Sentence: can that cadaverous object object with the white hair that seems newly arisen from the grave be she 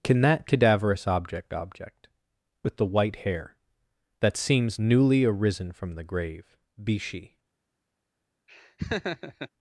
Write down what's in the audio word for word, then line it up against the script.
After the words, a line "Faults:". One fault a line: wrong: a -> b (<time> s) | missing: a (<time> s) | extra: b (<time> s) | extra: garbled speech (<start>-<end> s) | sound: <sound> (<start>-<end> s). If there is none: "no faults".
can that cadaverous object object with the white hair that seems newly arisen from the grave be she
Faults:
sound: laugh (8.5-9.5 s)